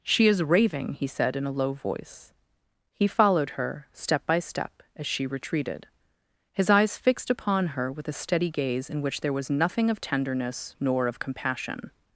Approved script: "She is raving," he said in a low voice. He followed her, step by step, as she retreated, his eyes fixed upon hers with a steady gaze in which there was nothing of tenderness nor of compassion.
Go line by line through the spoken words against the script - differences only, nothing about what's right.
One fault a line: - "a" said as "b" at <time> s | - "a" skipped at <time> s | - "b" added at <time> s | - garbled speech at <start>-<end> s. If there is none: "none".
- "hers" said as "her" at 7.7 s